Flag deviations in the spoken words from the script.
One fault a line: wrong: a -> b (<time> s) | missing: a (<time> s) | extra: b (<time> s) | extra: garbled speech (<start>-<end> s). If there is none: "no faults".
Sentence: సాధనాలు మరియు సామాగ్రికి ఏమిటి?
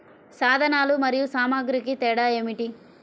extra: తేడా (1.9 s)